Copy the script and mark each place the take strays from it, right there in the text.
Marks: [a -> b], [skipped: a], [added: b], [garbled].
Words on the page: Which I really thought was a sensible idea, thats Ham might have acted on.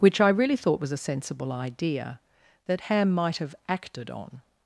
Which I really thought was a sensible idea, [thats -> that] Ham might have acted on.